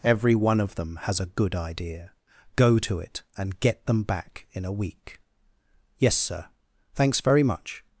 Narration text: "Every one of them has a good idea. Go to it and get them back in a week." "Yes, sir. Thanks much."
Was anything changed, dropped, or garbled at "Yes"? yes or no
no